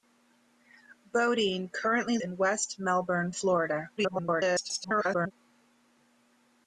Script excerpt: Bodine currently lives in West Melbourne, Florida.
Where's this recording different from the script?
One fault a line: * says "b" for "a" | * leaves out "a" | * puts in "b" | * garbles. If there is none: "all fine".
* leaves out "lives"
* garbles